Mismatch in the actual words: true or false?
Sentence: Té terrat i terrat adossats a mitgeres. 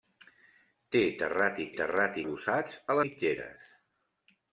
false